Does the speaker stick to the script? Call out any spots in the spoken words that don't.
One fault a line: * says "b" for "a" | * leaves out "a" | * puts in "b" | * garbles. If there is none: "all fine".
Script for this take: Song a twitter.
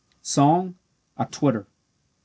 all fine